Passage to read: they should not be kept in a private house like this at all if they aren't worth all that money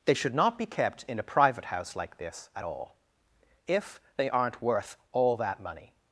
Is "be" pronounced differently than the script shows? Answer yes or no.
no